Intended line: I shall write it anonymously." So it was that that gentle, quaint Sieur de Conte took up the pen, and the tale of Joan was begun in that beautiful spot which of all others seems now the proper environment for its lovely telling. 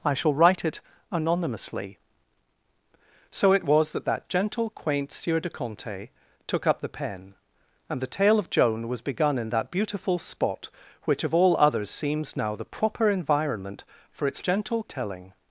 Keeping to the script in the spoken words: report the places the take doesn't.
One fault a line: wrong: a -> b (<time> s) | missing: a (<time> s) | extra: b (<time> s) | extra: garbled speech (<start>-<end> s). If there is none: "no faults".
wrong: lovely -> gentle (14.4 s)